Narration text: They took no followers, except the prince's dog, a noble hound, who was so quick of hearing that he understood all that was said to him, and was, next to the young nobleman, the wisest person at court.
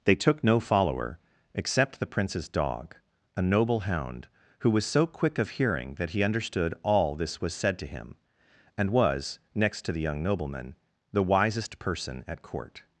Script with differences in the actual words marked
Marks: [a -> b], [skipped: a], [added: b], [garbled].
They took no [followers, -> follower] except the prince's dog, a noble hound, who was so quick of hearing that he understood all [that -> this] was said to him, and was, next to the young nobleman, the wisest person at court.